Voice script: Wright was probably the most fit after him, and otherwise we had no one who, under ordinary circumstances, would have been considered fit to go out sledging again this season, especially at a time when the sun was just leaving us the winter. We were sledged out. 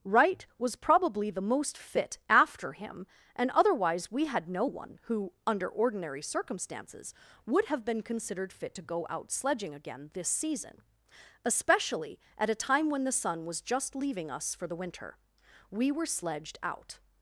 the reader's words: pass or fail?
fail